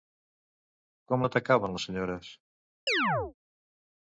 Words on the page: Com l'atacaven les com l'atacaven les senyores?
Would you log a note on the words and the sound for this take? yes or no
yes